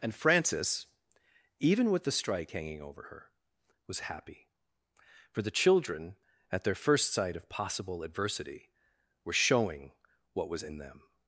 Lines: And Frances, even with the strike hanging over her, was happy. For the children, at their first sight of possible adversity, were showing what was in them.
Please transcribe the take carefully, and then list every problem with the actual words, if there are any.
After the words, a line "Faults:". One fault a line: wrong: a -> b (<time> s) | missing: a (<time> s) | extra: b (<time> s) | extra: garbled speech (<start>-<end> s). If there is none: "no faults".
And Frances, even with the strike hanging over her, was happy. For the children, at their first sight of possible adversity, were showing what was in them.
Faults:
no faults